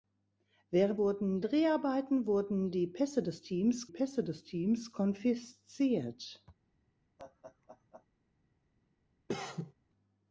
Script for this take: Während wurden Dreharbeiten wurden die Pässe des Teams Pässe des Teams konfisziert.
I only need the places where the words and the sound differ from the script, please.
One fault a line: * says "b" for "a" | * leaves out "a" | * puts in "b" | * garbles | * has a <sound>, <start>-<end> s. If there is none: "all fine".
* has a laugh, 7.2-8.1 s
* has a cough, 9.3-9.7 s